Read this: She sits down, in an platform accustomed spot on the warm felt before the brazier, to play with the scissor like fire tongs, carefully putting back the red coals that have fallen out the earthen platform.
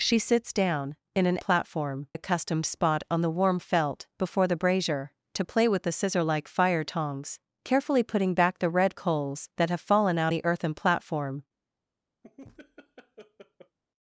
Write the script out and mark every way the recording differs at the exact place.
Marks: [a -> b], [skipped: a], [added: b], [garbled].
She sits down, in an platform accustomed spot on the warm felt before the brazier, to play with the scissor like fire tongs, carefully putting back the red coals that have fallen out the earthen platform.